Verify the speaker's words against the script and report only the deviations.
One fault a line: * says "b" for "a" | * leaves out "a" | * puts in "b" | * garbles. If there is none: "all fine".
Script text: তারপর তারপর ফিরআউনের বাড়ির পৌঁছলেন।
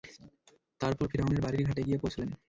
* leaves out "তারপর"
* puts in "ঘাটে গিয়ে"